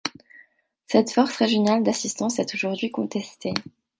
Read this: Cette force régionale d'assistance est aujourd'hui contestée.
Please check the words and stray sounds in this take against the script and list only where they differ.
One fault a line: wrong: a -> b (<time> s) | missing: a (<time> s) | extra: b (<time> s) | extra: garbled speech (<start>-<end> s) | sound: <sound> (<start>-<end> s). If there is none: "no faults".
no faults